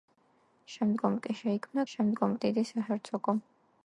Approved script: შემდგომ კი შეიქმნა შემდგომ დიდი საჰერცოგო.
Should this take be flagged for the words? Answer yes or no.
no